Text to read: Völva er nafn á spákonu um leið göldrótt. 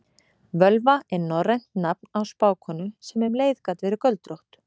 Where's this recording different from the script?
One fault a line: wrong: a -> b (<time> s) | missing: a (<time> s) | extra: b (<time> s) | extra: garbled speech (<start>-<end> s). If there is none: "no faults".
extra: norrænt (1.2 s)
extra: sem (3.1 s)
extra: gat verið (3.7 s)